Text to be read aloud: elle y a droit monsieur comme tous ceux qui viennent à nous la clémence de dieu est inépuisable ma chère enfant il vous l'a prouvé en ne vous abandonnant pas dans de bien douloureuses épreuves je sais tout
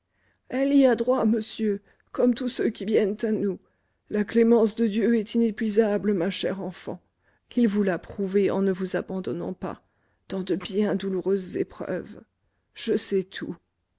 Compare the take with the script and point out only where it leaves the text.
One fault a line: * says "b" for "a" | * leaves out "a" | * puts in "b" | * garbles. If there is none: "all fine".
all fine